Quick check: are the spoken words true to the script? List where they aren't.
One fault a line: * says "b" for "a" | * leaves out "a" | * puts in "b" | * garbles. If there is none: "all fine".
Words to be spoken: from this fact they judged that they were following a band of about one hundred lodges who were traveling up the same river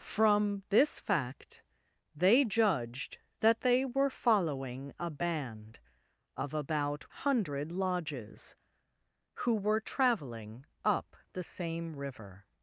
* leaves out "one"